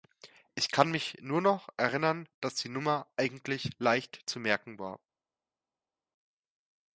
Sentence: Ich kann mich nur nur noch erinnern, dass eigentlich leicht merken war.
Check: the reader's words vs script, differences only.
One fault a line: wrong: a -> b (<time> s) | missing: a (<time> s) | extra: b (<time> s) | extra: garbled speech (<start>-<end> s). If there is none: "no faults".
missing: nur (1.4 s)
extra: die Nummer (2.5 s)
extra: zu (4.3 s)